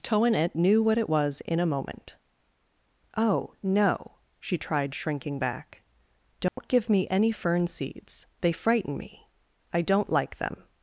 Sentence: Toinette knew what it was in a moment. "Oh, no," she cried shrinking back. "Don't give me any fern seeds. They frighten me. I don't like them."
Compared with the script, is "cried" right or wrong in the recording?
wrong